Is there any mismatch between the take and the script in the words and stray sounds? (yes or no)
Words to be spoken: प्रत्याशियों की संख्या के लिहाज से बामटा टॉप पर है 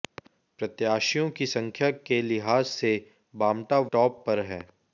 no